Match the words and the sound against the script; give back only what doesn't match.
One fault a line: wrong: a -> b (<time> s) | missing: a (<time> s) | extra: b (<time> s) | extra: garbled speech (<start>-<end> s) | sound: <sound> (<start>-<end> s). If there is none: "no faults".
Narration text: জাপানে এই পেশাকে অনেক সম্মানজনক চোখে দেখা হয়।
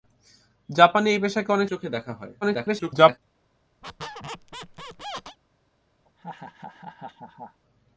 missing: সম্মানজনক (1.7 s)
extra: garbled speech (2.4-3.2 s)
sound: squeak (3.8-5.4 s)
sound: laugh (6.0-7.6 s)